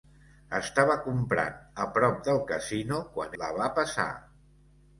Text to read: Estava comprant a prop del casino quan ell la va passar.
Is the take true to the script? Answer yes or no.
no